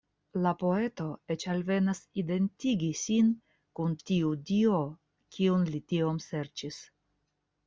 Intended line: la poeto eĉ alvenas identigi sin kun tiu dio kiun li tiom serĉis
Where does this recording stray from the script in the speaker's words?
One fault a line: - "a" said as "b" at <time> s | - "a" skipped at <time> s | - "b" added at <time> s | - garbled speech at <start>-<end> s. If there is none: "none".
none